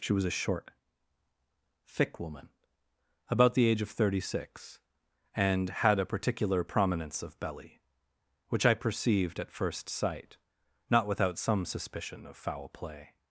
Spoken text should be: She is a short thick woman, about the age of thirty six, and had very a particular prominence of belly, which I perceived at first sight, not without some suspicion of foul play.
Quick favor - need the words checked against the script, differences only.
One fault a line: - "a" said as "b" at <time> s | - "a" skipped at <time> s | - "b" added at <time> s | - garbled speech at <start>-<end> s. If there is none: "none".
- "is" said as "was" at 0.1 s
- "very" skipped at 6.0 s